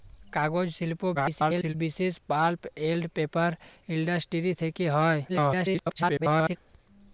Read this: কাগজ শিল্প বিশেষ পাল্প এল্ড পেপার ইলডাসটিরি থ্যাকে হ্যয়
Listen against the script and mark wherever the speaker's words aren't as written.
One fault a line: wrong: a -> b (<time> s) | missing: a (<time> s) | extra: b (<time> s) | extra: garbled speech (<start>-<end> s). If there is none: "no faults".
extra: garbled speech (1.1-1.7 s)
extra: garbled speech (5.3-6.6 s)